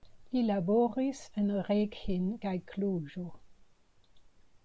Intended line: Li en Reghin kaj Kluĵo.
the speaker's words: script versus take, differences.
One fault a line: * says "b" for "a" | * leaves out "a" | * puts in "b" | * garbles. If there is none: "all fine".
* puts in "laboris"